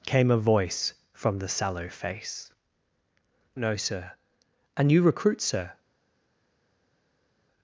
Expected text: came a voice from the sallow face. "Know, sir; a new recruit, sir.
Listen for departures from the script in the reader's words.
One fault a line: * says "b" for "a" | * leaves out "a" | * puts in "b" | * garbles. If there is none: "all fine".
all fine